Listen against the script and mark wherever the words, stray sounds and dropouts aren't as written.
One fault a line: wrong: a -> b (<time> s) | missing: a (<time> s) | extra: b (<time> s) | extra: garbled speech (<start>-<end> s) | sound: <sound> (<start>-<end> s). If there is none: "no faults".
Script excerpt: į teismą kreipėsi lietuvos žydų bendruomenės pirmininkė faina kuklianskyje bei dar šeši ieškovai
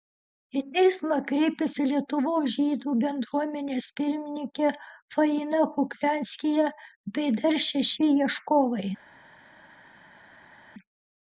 no faults